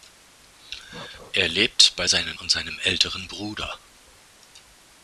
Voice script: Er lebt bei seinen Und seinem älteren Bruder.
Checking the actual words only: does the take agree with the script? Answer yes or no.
yes